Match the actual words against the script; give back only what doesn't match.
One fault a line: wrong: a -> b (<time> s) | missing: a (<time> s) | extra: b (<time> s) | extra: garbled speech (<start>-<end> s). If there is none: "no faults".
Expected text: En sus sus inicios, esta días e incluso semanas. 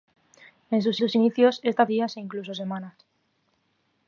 no faults